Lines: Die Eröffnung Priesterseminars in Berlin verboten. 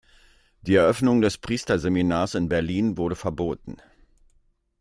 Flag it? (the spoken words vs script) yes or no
yes